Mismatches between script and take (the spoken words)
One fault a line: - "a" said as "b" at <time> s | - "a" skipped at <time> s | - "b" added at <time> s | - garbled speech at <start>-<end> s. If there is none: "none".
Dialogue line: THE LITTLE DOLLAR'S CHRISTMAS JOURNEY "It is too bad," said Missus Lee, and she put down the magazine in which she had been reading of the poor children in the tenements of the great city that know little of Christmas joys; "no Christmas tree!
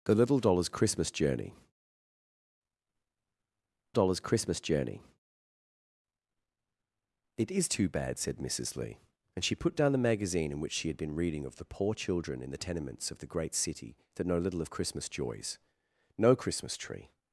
- "DOLLAR'S CHRISTMAS JOURNEY" added at 3.9 s